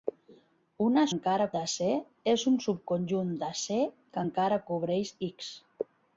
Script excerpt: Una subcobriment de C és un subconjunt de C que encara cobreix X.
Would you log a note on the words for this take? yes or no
yes